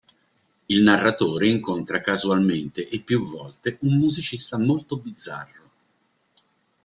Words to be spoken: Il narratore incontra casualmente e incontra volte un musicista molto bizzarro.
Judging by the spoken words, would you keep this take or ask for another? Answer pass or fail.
fail